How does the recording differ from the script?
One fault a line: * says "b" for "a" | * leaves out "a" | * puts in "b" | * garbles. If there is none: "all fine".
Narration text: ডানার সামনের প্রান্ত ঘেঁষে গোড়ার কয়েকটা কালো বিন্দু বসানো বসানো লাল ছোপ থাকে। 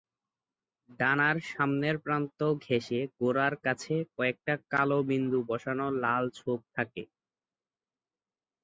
* puts in "কাছে"
* leaves out "বসানো"